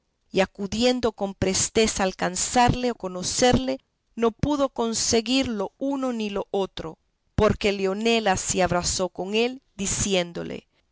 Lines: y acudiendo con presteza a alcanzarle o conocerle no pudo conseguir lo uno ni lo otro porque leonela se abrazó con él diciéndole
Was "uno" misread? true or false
false